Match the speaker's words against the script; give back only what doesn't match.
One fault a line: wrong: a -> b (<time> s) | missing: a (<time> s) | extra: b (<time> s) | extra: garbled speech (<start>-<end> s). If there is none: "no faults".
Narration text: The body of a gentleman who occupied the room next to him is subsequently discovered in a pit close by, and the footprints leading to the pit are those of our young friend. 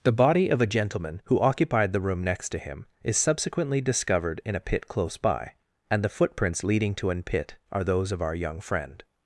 wrong: the -> an (7.1 s)